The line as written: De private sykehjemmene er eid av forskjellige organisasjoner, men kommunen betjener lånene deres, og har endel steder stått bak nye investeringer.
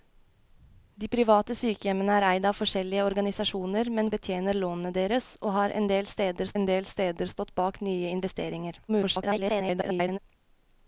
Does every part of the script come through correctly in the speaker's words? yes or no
no